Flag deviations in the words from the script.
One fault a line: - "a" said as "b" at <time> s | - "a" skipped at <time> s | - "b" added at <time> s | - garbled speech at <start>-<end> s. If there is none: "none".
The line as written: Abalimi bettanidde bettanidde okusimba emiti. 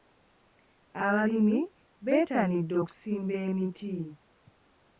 - "bettanidde" skipped at 2.7 s